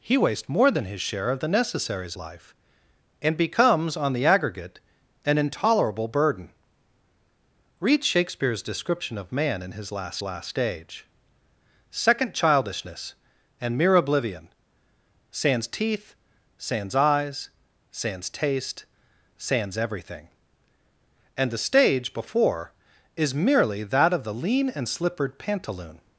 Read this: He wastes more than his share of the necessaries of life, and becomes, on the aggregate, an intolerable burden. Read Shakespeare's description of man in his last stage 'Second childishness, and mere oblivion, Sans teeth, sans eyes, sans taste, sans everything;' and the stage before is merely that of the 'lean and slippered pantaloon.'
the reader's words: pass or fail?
fail